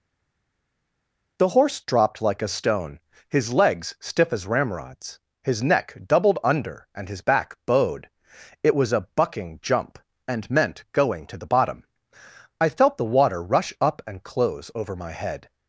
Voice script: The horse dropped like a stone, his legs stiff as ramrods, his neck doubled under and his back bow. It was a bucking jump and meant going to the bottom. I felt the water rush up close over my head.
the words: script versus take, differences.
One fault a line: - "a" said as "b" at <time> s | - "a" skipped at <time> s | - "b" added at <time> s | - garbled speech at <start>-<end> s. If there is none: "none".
- "bow" said as "bowed" at 7.6 s
- "and" added at 14.1 s